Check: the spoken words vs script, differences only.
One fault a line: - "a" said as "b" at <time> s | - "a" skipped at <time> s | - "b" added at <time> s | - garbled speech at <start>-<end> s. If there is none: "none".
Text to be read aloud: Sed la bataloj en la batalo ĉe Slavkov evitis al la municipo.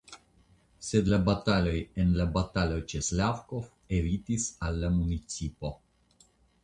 none